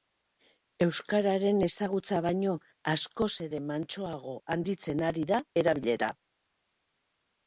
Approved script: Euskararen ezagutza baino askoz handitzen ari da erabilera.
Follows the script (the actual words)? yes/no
no